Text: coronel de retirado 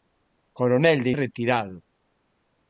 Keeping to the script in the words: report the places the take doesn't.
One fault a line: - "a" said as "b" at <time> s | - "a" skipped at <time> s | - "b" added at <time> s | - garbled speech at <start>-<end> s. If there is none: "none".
none